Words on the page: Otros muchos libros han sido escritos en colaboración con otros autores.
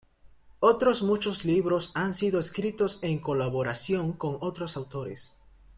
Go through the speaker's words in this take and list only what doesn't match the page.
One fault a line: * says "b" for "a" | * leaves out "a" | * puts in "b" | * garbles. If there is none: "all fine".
all fine